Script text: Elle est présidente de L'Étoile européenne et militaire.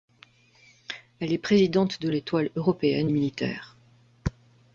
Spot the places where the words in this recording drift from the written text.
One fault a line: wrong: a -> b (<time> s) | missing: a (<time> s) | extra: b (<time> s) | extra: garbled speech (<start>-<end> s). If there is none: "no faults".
no faults